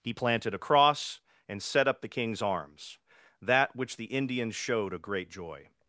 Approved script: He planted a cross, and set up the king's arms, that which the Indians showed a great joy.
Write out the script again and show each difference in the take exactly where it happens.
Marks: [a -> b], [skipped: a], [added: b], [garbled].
He planted a cross, and set up the king's arms, that which the Indians showed a great joy.